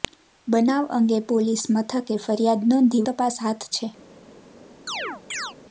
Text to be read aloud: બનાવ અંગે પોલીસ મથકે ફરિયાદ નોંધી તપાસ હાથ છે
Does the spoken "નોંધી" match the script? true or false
true